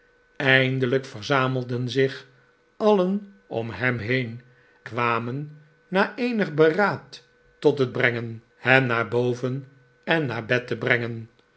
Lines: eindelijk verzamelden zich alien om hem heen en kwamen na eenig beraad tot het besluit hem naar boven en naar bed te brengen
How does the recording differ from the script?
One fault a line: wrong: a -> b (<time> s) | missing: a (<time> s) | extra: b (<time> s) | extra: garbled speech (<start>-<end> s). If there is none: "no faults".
missing: en (4.4 s)
wrong: besluit -> brengen (7.9 s)